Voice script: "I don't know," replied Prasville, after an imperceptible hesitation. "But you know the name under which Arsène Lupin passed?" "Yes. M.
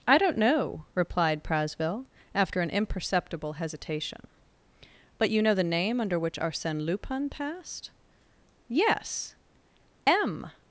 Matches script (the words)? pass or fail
pass